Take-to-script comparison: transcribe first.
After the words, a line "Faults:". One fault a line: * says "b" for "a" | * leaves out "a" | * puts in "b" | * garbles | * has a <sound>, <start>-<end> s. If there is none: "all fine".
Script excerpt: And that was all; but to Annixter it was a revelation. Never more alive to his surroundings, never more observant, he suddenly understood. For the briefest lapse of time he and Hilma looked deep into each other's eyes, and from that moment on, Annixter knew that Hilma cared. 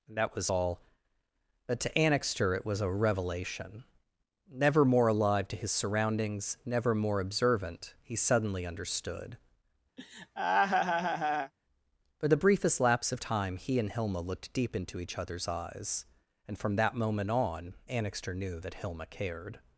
And that was all; but to Annixter it was a revelation. Never more alive to his surroundings, never more observant, he suddenly understood. For the briefest lapse of time he and Hilma looked deep into each other's eyes, and from that moment on, Annixter knew that Hilma cared.
Faults:
* has a laugh, 10.0-11.5 s